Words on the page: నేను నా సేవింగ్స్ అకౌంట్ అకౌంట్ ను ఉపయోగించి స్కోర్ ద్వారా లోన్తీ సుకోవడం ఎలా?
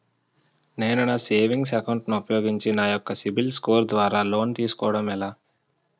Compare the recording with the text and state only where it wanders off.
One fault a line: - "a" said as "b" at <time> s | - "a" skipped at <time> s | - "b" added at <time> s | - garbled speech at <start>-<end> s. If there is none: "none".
- "అకౌంట్" skipped at 2.1 s
- "నా యెక్క సిబిల్" added at 2.7 s